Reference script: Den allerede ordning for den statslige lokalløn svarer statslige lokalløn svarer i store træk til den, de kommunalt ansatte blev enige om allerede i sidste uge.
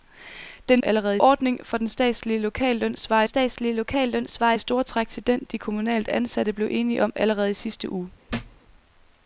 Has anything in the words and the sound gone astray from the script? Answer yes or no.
yes